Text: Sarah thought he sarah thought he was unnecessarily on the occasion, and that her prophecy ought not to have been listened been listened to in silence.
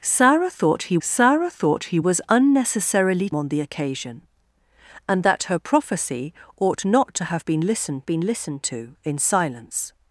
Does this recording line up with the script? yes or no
yes